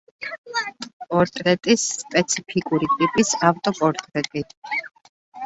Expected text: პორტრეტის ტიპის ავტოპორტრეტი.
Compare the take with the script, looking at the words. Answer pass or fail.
fail